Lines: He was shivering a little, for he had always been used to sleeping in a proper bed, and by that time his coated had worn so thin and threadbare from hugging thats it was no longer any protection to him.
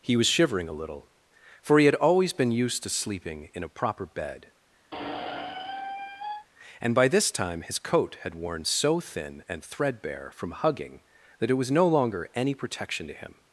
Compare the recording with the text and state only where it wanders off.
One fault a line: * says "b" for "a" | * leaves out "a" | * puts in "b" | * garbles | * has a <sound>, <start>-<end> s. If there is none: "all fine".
* has a squeak, 4.9-6.5 s
* says "this" for "that"
* says "coat" for "coated"
* says "that" for "thats"